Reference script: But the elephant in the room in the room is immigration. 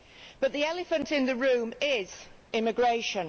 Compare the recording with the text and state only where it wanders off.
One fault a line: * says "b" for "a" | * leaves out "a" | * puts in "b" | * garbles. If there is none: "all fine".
* leaves out "in the room"